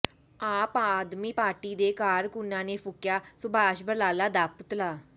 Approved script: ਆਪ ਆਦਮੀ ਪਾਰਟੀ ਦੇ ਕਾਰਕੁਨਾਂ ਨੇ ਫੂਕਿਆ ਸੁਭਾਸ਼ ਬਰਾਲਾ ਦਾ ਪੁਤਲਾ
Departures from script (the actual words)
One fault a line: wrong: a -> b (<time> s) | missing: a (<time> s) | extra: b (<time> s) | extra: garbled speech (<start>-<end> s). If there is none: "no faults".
no faults